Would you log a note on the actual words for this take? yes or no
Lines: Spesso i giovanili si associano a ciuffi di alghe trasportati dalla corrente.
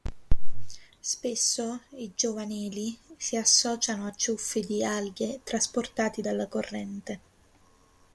no